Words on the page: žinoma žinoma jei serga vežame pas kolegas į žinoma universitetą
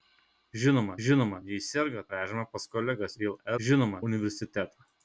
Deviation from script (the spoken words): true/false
false